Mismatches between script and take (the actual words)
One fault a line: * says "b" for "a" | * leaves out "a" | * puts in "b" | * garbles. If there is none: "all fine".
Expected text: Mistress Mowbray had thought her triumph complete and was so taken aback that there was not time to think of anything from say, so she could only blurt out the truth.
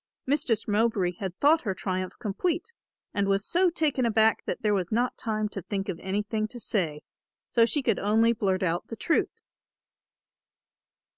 * says "to" for "from"